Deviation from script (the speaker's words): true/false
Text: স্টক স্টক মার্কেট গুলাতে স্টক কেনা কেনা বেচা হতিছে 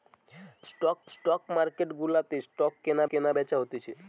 false